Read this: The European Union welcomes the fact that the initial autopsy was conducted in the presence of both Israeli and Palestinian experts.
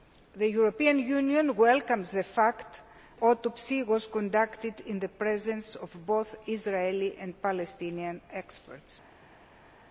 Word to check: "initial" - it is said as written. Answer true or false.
false